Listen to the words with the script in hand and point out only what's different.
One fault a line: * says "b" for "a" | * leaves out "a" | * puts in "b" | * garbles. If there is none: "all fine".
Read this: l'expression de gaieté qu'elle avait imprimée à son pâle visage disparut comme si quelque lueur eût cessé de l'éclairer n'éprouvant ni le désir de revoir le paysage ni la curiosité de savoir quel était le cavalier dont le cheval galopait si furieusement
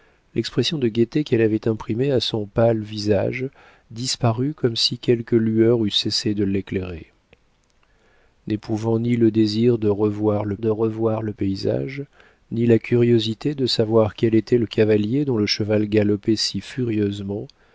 * puts in "de revoir le"